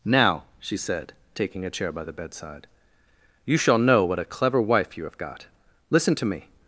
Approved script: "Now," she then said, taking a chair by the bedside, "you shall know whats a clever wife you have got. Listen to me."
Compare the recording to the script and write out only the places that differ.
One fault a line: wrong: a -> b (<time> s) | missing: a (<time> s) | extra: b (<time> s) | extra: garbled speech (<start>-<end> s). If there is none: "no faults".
missing: then (0.8 s)
wrong: whats -> what (4.0 s)